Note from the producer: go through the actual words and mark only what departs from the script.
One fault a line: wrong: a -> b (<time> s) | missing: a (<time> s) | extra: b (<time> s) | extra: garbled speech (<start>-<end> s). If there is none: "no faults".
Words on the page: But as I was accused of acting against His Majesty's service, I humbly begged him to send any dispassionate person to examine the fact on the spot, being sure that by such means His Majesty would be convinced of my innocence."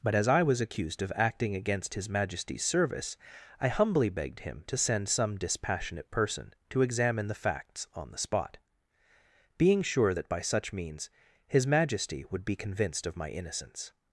wrong: any -> some (5.1 s)
wrong: fact -> facts (7.4 s)